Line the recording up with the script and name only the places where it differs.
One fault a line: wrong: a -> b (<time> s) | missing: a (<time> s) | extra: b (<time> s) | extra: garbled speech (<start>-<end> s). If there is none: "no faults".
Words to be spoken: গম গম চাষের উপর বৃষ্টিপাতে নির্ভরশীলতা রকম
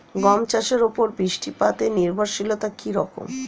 missing: গম (0.4 s)
extra: কী (2.8 s)